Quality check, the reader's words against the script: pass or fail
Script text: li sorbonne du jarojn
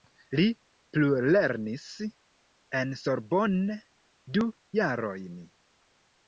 fail